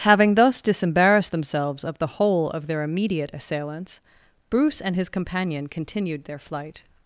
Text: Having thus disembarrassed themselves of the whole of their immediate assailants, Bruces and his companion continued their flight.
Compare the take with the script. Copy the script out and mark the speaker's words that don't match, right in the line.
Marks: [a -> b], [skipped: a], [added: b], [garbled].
Having thus disembarrassed themselves of the whole of their immediate assailants, [Bruces -> Bruce] and his companion continued their flight.